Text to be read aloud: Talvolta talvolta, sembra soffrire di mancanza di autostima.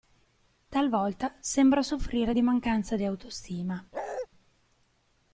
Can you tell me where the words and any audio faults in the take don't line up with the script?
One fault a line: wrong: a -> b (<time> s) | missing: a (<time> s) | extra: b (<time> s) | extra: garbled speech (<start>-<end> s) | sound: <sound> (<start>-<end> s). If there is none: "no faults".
missing: talvolta (1.4 s)
sound: bark (3.9-4.3 s)